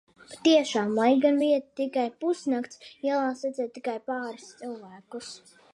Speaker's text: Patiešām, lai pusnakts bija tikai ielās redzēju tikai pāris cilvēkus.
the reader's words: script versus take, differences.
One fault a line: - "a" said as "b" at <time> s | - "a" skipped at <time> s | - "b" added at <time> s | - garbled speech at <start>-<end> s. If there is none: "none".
- "pusnakts" said as "gan" at 1.2 s
- "pusnakts" added at 2.2 s